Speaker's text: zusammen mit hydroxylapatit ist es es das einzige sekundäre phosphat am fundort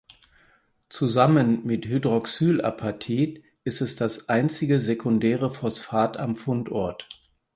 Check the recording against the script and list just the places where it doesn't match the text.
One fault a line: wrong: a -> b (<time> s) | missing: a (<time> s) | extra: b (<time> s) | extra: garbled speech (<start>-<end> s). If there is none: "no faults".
missing: es (4.0 s)